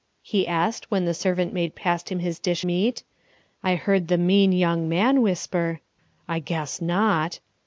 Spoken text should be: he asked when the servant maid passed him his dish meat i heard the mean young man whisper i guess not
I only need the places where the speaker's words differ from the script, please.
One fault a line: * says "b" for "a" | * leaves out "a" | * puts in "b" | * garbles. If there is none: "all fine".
all fine